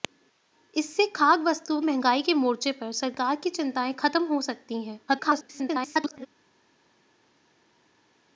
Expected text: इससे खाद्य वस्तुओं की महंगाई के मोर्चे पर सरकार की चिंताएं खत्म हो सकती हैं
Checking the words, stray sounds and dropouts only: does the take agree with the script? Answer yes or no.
no